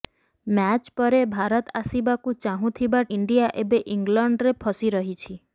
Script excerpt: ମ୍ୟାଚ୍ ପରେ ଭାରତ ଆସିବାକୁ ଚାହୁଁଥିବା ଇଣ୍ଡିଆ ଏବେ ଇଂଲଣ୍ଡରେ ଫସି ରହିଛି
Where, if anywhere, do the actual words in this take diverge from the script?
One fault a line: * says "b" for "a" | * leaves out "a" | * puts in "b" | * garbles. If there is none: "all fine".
all fine